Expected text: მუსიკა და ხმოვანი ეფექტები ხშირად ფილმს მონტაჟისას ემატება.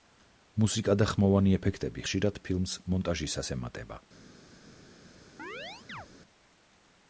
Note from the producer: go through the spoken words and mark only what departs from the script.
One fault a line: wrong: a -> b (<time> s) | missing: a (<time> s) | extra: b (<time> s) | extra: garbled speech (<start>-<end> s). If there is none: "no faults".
no faults